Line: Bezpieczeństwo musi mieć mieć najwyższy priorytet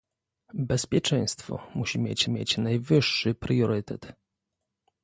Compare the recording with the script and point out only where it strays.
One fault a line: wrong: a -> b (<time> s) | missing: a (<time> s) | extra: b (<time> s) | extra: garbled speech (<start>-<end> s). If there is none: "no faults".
no faults